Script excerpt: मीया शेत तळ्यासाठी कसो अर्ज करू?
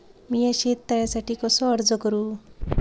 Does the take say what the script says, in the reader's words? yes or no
yes